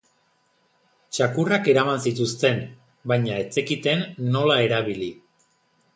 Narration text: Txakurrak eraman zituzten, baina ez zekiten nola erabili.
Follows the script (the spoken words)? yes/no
yes